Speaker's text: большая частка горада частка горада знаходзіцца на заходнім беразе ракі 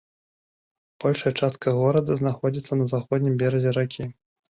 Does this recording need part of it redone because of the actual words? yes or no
yes